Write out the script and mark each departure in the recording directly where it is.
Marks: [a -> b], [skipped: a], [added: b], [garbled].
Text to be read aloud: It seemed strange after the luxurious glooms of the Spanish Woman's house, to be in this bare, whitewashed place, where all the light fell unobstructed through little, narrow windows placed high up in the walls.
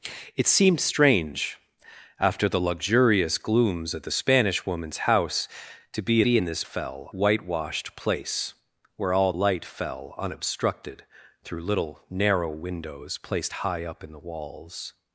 It seemed strange after the luxurious glooms of the Spanish Woman's house, to be [added: be] in this [bare, -> fell] whitewashed place, where all [skipped: the] light fell unobstructed through little, narrow windows placed high up in the walls.